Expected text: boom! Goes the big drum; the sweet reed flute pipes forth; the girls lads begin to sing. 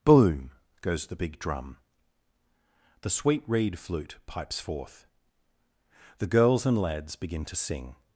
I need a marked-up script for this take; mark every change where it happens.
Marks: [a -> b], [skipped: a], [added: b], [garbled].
boom! Goes the big drum; the sweet reed flute pipes forth; the girls [added: and] lads begin to sing.